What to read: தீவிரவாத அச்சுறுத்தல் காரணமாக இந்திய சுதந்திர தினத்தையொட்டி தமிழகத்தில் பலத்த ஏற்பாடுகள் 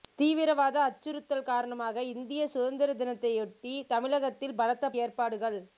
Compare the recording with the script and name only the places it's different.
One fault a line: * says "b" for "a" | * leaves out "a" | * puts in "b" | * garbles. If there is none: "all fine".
all fine